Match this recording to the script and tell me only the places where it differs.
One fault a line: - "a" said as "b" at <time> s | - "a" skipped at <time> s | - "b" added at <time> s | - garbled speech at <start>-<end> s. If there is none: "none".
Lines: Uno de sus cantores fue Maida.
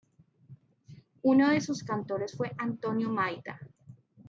- "Antonio" added at 2.6 s